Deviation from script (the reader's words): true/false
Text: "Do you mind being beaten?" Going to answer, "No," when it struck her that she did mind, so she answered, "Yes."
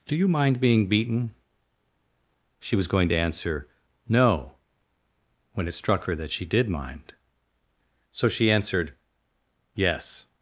true